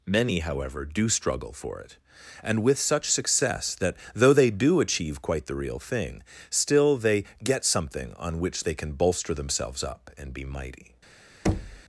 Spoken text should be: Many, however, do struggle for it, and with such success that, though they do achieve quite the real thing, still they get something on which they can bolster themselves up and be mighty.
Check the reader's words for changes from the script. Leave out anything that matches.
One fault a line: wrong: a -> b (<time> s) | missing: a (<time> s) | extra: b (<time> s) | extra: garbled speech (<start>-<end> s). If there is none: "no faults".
no faults